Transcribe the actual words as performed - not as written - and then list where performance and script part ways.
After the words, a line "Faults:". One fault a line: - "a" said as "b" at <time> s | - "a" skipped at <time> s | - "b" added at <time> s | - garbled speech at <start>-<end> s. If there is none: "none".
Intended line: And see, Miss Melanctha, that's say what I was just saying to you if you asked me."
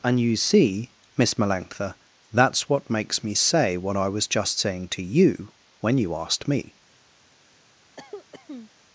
And you see, Miss Melanctha, that's what makes me say what I was just saying to you when you asked me."
Faults:
- "you" added at 0.2 s
- "what makes me" added at 2.7 s
- "if" said as "when" at 5.8 s